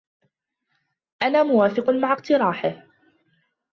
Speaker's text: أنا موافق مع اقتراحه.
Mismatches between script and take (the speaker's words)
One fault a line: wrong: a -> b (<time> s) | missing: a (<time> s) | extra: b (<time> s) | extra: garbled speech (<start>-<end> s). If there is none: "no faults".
no faults